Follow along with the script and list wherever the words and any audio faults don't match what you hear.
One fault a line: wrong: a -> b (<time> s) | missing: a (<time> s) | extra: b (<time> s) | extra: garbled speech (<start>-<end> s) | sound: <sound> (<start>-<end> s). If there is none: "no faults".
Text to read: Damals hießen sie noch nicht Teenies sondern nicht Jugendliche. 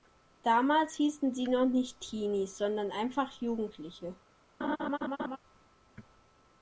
wrong: nicht -> einfach (2.9 s)
sound: laugh (4.6-5.4 s)